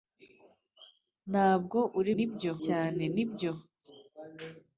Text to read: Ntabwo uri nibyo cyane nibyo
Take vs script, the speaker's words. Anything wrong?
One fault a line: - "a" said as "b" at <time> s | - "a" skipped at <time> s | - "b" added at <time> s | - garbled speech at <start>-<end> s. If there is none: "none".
none